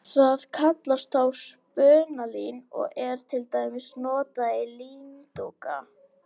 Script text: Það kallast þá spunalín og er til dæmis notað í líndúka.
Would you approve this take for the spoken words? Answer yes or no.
yes